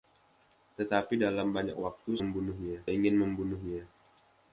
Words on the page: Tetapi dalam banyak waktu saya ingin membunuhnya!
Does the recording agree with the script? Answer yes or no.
no